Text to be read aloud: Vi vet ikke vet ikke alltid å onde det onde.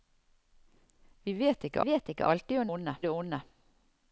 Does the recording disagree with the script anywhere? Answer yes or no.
no